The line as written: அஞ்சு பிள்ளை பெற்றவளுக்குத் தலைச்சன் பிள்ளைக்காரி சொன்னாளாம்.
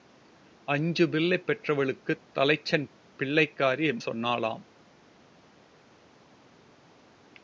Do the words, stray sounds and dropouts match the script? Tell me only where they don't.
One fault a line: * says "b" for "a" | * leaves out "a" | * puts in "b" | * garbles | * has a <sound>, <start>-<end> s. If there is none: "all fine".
all fine